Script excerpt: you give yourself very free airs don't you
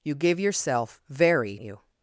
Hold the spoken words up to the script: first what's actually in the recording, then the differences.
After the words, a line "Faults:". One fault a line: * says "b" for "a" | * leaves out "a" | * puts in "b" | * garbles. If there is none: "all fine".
you give yourself very you
Faults:
* leaves out "free airs don't"